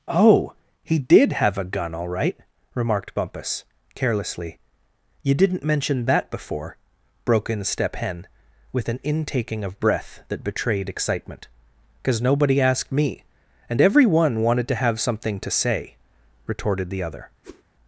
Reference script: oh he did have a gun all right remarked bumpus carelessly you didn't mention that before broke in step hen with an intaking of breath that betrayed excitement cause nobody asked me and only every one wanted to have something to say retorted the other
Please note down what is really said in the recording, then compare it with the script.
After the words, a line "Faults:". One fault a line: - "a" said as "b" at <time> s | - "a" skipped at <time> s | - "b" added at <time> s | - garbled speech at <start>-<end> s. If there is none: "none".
oh he did have a gun all right remarked bumpus carelessly you didn't mention that before broke in step hen with an intaking of breath that betrayed excitement cause nobody asked me and every one wanted to have something to say retorted the other
Faults:
- "only" skipped at 13.8 s